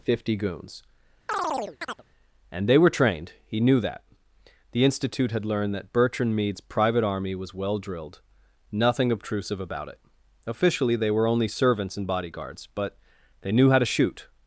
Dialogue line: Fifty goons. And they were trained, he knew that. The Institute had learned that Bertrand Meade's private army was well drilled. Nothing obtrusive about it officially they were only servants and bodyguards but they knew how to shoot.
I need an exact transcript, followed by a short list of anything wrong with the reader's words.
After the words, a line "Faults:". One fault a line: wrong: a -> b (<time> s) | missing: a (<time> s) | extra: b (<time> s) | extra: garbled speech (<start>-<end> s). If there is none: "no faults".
Fifty goons. And they were trained, he knew that. The Institute had learned that Bertrand Meade's private army was well drilled. Nothing obtrusive about it officially they were only servants and bodyguards but they knew how to shoot.
Faults:
no faults